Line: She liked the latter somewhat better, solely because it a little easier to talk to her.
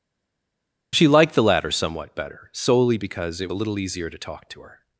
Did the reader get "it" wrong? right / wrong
right